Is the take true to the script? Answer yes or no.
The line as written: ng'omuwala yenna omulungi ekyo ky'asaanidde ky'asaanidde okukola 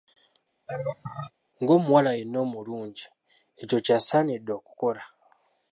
no